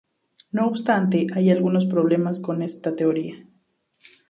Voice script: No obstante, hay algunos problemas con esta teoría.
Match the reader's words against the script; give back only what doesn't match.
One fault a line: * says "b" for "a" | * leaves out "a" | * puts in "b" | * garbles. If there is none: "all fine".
all fine